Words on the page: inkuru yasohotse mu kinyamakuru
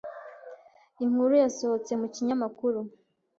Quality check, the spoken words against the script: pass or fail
pass